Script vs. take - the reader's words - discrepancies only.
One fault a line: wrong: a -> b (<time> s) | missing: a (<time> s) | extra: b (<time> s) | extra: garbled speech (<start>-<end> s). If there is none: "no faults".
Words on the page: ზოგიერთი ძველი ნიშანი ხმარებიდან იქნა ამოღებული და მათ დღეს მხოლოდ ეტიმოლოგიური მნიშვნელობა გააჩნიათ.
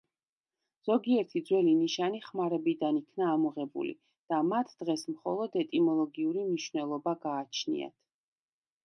no faults